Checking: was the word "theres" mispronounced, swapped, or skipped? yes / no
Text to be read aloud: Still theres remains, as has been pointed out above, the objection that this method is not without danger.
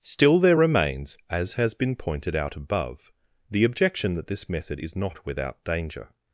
yes